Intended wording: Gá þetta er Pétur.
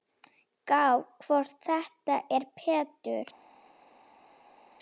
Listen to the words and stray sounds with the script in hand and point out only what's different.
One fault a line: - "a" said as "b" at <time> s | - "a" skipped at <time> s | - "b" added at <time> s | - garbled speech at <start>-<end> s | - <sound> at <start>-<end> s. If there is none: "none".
- "hvort" added at 1.2 s